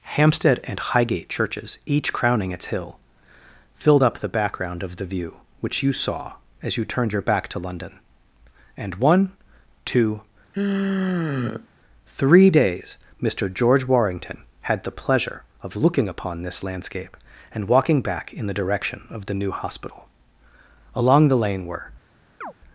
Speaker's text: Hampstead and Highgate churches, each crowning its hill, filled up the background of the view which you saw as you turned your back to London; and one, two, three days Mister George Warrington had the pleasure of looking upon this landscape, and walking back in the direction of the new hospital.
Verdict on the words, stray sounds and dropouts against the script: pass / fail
fail